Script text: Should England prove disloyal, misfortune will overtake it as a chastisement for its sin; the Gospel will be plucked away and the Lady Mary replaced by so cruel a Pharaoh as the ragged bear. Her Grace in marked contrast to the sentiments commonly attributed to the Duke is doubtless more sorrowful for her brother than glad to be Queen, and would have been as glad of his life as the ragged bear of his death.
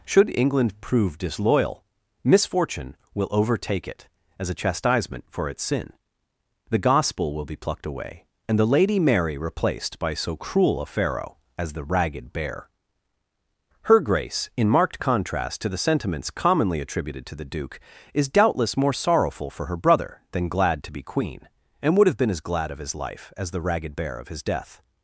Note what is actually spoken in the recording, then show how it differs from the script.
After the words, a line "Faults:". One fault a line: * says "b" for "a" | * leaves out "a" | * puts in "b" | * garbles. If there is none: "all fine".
Should England prove disloyal, misfortune will overtake it as a chastisement for its sin; the Gospel will be plucked away and the Lady Mary replaced by so cruel a Pharaoh as the ragged bear. Her Grace in marked contrast to the sentiments commonly attributed to the Duke is doubtless more sorrowful for her brother than glad to be Queen, and would have been as glad of his life as the ragged bear of his death.
Faults:
all fine